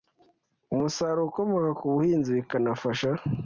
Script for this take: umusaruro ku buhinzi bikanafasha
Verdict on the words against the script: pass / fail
fail